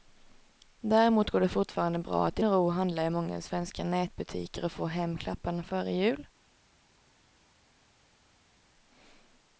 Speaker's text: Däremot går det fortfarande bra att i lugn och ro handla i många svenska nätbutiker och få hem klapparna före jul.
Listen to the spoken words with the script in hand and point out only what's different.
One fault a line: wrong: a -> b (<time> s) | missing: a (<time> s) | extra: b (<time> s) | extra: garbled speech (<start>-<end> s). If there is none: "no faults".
missing: lugn (2.4 s)